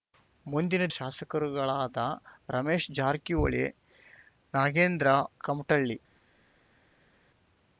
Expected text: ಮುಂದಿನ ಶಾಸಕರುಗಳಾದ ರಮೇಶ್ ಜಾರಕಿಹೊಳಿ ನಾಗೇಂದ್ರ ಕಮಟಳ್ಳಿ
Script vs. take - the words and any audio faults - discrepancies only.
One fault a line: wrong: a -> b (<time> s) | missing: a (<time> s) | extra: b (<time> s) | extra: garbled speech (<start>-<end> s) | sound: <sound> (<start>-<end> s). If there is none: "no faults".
no faults